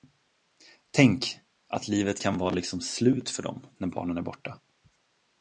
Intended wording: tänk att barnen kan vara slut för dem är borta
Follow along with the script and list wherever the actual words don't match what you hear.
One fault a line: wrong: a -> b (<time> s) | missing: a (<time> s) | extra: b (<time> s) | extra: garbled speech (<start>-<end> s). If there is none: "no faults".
wrong: barnen -> livet (1.9 s)
extra: liksom (2.5 s)
extra: när barnen (3.8 s)